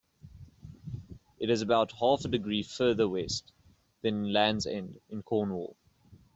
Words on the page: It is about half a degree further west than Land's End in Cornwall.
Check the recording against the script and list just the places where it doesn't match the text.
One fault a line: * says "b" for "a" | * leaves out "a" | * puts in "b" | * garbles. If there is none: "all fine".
all fine